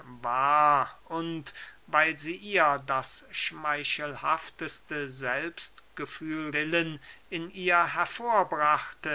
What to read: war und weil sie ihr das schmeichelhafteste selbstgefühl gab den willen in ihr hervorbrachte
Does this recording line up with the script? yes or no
no